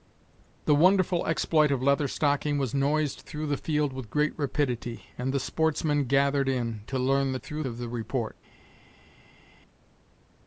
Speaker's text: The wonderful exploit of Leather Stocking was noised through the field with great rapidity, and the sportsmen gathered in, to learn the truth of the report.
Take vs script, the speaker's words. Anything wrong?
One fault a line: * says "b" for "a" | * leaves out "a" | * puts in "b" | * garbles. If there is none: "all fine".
* says "through" for "truth"